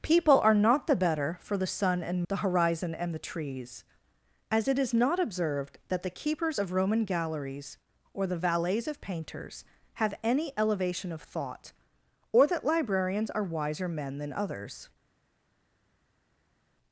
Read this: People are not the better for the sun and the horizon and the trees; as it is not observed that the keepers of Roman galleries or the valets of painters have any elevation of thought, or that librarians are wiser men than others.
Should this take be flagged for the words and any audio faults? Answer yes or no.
no